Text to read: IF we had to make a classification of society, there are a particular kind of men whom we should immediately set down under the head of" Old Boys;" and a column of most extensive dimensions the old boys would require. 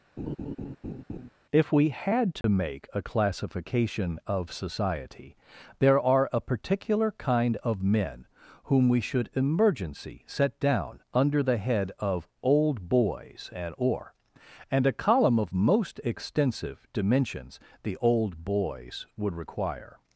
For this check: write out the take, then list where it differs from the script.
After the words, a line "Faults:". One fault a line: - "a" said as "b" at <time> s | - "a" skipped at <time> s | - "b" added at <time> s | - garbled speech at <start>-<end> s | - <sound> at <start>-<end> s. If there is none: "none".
IF we had to make a classification of society, there are a particular kind of men whom we should emergency set down under the head of" Old Boys;" and or and a column of most extensive dimensions the old boys would require.
Faults:
- laugh at 0.2-1.3 s
- dropout at 2.4-2.4 s
- "immediately" said as "emergency" at 9.3 s
- "or and" added at 13.8 s